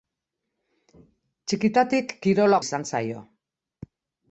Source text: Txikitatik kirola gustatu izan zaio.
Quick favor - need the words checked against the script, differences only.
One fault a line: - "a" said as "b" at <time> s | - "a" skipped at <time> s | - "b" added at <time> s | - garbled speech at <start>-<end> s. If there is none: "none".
- "gustatu" skipped at 2.6 s